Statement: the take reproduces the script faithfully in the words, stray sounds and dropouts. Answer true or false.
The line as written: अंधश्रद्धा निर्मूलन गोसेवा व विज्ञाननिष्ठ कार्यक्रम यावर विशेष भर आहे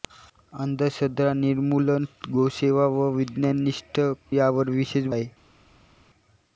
false